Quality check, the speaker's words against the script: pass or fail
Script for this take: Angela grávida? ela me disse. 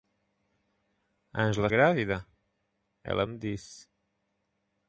pass